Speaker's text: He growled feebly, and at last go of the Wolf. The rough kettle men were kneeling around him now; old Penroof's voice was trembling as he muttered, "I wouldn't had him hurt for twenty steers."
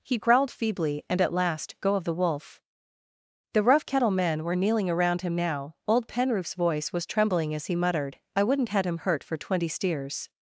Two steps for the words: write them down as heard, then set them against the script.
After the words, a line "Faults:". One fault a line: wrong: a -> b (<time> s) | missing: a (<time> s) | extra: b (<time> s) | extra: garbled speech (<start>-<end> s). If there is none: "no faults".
He growled feebly, and at last go of the Wolf. The rough kettle men were kneeling around him now; old Penroof's voice was trembling as he muttered, "I wouldn't had him hurt for twenty steers."
Faults:
no faults